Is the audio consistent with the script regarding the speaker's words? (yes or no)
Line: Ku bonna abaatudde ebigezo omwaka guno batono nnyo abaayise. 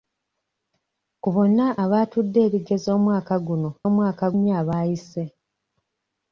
no